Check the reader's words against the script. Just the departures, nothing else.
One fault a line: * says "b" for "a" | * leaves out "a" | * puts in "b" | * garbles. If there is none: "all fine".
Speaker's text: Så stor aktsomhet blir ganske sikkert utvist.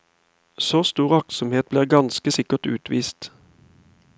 all fine